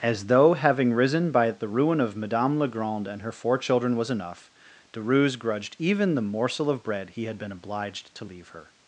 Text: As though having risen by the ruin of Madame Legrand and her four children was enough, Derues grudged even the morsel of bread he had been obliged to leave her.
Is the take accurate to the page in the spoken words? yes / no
yes